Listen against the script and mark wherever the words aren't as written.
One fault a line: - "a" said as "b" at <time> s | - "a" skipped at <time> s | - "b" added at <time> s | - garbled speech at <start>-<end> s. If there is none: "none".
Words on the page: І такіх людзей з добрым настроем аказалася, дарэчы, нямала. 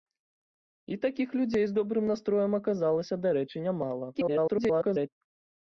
- garbled speech at 4.1-5.1 s